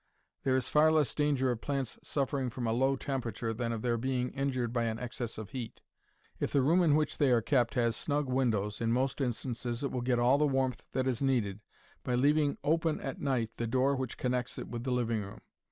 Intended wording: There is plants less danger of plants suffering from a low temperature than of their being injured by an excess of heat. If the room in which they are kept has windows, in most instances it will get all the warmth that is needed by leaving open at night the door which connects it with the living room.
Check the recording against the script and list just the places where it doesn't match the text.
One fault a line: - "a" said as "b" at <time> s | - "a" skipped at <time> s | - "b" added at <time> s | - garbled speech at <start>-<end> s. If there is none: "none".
- "plants" said as "far" at 0.7 s
- "snug" added at 7.9 s